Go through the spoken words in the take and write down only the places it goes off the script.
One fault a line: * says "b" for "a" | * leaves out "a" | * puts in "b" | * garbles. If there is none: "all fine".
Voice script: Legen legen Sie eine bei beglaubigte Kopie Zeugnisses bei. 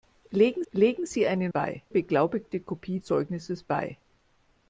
all fine